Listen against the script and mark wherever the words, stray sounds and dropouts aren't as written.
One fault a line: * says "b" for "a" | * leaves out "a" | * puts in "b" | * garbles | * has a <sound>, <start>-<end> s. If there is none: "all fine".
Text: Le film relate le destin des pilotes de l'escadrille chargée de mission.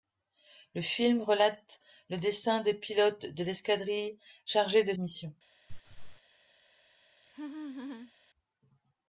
* has a laugh, 5.7-6.2 s
* has a laugh, 7.2-8.1 s